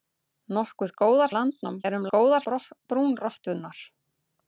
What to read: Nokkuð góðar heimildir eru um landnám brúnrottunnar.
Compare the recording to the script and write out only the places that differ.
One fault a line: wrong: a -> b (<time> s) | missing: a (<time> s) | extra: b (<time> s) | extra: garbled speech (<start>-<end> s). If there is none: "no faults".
wrong: heimildir -> landnám (1.4 s)
wrong: landnám -> góðar (2.1 s)